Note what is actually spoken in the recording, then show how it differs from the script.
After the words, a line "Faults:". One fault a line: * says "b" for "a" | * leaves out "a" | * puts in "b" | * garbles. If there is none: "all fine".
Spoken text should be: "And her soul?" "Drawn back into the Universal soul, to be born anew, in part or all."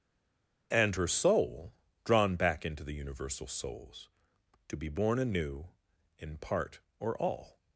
"And her soul?" "Drawn back into the Universal souls, to be born anew, in part or all."
Faults:
* says "souls" for "soul"